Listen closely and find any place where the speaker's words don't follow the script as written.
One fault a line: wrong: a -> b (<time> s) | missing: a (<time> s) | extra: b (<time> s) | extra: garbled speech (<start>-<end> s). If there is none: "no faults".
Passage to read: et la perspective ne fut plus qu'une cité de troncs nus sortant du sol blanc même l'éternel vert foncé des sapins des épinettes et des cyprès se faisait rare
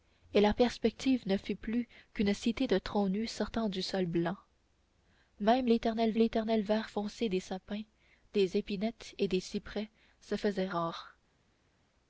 extra: l'éternel (6.1 s)